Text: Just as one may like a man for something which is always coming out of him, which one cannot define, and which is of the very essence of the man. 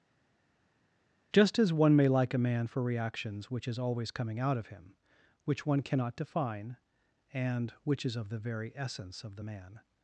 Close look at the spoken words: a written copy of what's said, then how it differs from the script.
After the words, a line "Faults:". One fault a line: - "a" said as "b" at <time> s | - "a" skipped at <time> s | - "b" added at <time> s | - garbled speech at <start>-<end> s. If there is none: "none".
Just as one may like a man for reactions which is always coming out of him, which one cannot define, and which is of the very essence of the man.
Faults:
- "something" said as "reactions" at 2.8 s